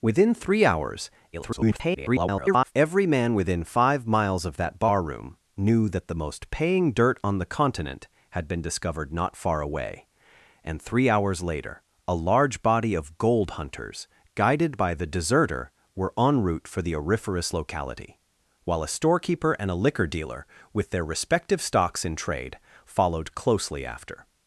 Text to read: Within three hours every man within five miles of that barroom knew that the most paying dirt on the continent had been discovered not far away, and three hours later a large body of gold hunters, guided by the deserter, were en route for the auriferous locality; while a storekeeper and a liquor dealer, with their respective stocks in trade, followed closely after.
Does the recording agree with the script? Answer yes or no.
no